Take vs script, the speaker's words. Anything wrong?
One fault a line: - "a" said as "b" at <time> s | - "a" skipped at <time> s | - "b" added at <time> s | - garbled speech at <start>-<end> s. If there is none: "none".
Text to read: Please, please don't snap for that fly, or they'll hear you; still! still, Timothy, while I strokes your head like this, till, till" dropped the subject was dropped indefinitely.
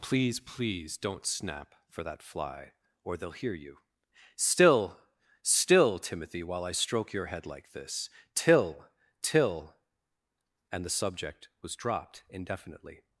- "strokes" said as "stroke" at 6.7 s
- "dropped" said as "and" at 10.7 s